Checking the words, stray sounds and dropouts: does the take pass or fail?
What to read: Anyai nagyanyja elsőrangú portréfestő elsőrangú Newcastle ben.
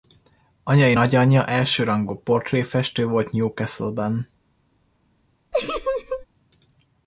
fail